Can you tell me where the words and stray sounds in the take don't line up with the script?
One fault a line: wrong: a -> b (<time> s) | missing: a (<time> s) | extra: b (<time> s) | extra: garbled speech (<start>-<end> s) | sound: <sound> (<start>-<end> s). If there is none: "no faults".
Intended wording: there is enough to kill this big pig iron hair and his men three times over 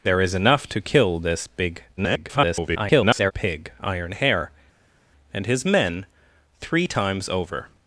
extra: garbled speech (2.0-3.3 s)